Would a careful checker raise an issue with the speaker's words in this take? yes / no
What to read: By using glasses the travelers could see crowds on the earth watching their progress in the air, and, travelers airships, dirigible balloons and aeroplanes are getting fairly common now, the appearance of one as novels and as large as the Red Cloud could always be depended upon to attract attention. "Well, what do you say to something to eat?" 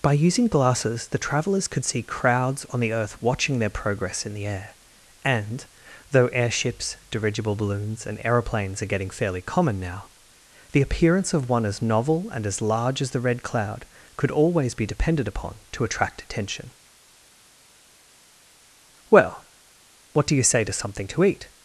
yes